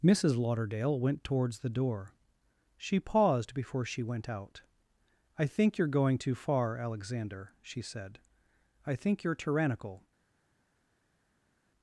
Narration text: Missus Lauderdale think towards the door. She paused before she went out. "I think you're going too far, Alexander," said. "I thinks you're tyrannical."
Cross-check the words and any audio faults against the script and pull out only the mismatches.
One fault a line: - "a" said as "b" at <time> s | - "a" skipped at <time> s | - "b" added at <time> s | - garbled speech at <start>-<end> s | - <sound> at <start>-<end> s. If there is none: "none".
- "think" said as "went" at 1.0 s
- "she" added at 7.6 s
- "thinks" said as "think" at 9.0 s